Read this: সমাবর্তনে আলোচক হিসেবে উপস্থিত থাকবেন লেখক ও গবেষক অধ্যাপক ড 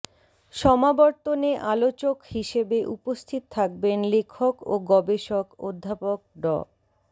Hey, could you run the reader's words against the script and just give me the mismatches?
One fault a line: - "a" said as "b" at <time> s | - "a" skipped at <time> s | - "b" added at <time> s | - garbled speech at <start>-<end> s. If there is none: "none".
none